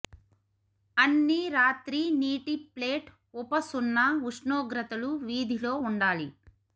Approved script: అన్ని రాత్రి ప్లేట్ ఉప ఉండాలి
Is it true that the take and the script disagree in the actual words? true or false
true